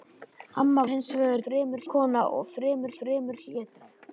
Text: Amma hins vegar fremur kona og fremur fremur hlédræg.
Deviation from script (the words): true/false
false